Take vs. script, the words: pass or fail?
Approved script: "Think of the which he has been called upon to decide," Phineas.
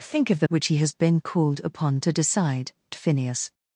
pass